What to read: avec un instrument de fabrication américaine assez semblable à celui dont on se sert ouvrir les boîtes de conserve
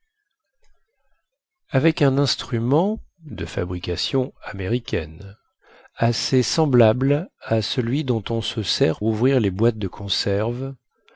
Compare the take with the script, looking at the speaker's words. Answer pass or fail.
pass